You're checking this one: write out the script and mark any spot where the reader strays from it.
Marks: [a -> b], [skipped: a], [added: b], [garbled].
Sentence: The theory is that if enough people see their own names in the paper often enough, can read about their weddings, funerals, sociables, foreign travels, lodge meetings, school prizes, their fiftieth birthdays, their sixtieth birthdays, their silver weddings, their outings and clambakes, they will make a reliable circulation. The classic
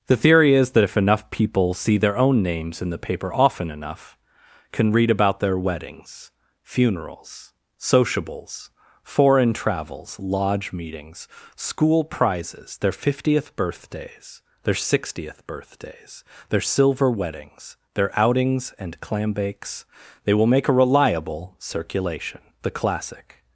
The theory is that if enough people see their own names in the paper often enough, can read about their weddings, funerals, sociables, foreign travels, lodge meetings, school prizes, their fiftieth birthdays, their sixtieth birthdays, their silver weddings, their outings and clambakes, they will make a reliable circulation. The classic